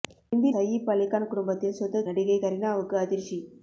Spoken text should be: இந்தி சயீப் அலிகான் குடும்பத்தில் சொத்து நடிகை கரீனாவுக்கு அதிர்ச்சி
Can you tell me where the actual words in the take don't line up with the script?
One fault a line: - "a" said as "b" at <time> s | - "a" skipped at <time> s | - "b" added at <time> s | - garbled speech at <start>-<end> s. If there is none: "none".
none